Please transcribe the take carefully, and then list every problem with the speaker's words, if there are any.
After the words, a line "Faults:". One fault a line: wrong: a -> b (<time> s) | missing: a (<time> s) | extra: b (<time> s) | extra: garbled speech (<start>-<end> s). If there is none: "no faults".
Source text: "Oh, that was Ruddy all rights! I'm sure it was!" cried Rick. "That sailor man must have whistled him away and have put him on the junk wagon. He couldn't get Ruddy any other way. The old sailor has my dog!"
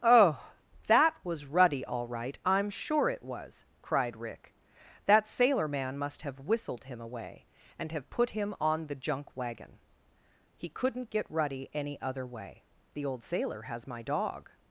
"Oh, that was Ruddy all right! I'm sure it was!" cried Rick. "That sailor man must have whistled him away and have put him on the junk wagon. He couldn't get Ruddy any other way. The old sailor has my dog!"
Faults:
wrong: rights -> right (2.1 s)